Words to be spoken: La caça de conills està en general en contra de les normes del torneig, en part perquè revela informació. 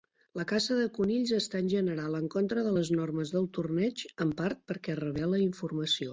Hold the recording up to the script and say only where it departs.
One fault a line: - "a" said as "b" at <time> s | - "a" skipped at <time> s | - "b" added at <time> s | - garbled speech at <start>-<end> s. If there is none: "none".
none